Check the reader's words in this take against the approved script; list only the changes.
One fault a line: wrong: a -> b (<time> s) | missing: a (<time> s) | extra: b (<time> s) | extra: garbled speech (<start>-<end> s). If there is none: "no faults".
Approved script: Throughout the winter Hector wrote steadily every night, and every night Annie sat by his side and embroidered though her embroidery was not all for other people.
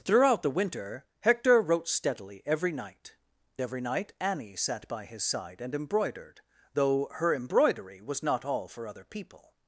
missing: and (3.1 s)